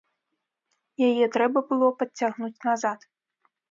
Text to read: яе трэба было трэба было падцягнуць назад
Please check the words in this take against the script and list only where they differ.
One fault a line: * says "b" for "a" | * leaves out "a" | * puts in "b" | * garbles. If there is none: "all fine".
* leaves out "трэба было"